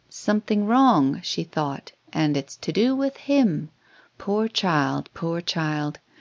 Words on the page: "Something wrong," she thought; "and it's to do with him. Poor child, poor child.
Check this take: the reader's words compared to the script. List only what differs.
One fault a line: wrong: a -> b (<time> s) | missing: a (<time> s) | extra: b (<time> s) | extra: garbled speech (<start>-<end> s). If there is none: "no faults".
no faults